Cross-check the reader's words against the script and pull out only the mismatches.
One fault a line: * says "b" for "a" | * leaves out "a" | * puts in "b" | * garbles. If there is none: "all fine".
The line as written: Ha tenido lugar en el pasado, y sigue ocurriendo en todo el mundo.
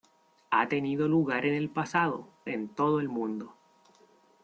* leaves out "y sigue ocurriendo"